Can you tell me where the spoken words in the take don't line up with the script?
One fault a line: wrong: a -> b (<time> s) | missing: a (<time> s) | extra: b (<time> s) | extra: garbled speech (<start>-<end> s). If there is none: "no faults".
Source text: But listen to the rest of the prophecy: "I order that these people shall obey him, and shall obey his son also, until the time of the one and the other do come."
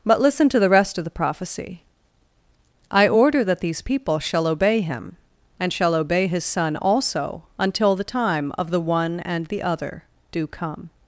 no faults